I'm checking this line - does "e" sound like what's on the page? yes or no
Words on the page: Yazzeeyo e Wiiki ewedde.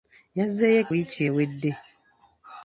yes